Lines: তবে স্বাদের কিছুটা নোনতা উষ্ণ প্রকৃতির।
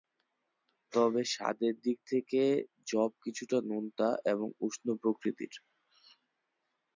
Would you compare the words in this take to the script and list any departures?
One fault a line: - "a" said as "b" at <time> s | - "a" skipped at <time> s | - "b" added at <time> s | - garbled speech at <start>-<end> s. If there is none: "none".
- "দিক থেকে যব" added at 1.8 s
- "এবং" added at 4.3 s